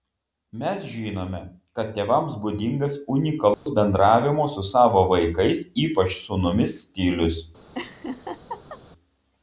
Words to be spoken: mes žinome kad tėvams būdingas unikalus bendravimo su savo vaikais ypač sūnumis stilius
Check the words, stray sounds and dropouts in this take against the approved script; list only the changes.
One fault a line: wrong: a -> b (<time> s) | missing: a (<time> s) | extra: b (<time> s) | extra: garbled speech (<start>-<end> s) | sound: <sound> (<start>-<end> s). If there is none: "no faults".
sound: dropout (3.5-3.7 s)
sound: laugh (7.7-8.8 s)